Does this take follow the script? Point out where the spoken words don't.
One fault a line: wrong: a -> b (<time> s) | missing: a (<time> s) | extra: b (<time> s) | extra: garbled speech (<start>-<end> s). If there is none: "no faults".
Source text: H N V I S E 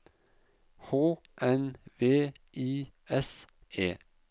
no faults